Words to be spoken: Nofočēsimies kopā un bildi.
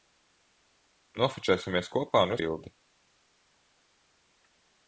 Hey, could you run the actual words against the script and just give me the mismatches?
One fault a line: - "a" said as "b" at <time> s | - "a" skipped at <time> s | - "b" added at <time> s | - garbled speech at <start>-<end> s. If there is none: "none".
none